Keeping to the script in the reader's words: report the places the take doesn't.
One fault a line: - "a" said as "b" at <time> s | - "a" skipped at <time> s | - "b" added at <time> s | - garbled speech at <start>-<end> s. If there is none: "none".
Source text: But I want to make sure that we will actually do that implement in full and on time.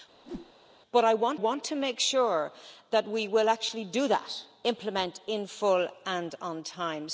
- "want" added at 1.3 s